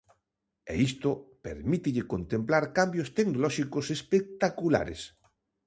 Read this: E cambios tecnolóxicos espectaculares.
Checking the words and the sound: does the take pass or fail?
fail